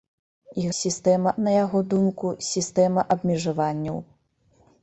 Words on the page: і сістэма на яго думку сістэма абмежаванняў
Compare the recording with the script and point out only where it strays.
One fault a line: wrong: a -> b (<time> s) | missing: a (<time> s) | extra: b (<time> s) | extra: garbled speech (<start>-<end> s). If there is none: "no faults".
no faults